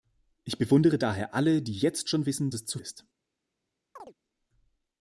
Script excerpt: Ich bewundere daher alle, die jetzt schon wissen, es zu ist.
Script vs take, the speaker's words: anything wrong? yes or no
no